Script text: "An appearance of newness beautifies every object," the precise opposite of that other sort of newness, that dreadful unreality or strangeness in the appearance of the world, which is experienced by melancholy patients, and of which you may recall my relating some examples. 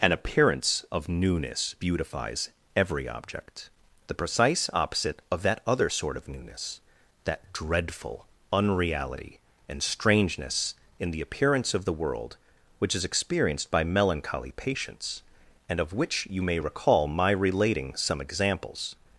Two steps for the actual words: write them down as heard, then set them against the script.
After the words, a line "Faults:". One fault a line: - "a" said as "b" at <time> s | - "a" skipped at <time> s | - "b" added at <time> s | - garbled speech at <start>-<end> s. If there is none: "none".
"An appearance of newness beautifies every object," the precise opposite of that other sort of newness, that dreadful unreality and strangeness in the appearance of the world, which is experienced by melancholy patients, and of which you may recall my relating some examples.
Faults:
- "or" said as "and" at 9.7 s